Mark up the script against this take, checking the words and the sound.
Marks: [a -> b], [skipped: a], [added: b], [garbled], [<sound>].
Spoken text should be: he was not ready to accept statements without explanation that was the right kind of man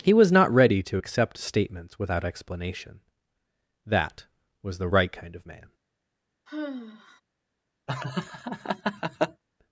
he was not ready to accept statements without explanation that was the right kind of man [sigh] [laugh]